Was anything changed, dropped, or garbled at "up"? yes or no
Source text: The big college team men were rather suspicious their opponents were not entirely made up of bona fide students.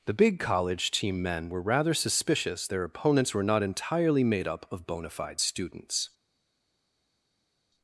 no